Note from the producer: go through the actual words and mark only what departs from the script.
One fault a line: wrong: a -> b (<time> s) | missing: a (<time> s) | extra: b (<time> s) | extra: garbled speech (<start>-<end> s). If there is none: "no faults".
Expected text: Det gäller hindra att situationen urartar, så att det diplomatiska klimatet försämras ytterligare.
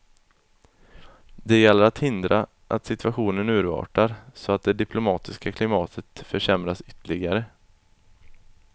extra: att (1.8 s)